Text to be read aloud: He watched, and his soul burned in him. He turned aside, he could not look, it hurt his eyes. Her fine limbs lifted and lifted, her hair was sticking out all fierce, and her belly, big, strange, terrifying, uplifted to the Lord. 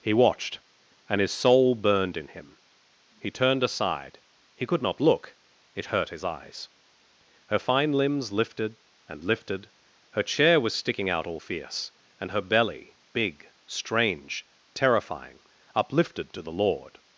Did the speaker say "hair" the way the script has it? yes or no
no